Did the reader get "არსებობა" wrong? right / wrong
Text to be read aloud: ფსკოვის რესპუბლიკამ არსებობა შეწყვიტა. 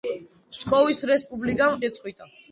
wrong